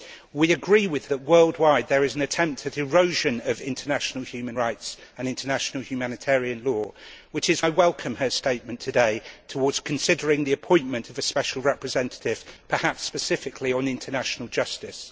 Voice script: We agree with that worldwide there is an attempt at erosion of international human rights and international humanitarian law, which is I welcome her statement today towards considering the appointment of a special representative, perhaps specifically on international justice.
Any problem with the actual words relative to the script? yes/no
no